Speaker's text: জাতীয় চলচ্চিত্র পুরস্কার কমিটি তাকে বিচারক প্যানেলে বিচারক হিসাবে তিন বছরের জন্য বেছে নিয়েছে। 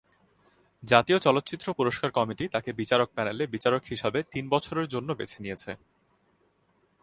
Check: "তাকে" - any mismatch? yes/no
no